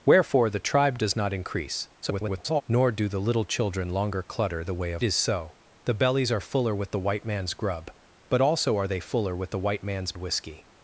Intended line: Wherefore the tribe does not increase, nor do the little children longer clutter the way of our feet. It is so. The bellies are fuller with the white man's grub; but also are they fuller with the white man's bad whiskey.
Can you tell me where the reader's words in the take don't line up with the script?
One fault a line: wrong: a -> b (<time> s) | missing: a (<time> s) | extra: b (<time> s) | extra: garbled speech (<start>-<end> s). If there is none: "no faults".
extra: garbled speech (2.0-2.6 s)
missing: our feet It (5.0 s)
missing: bad (10.1 s)